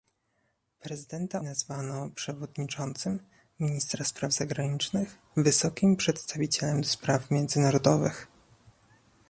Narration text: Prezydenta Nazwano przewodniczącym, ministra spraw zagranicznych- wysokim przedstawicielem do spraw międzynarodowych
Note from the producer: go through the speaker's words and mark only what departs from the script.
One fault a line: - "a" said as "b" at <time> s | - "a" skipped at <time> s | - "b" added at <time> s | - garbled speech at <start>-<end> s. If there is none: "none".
none